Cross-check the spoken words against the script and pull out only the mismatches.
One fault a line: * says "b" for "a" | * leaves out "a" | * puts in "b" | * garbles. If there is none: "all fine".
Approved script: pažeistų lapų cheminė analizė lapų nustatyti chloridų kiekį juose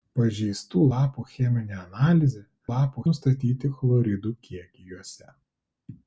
all fine